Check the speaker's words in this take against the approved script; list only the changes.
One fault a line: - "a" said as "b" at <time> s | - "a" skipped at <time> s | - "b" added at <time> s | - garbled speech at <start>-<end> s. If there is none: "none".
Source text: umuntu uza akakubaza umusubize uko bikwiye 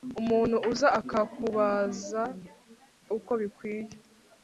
- "umusubize" skipped at 2.2 s